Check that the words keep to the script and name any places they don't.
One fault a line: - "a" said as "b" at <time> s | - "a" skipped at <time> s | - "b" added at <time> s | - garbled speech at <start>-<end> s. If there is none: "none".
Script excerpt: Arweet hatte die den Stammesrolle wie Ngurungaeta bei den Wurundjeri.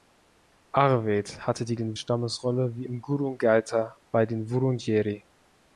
none